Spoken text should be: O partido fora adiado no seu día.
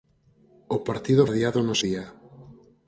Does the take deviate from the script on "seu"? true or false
true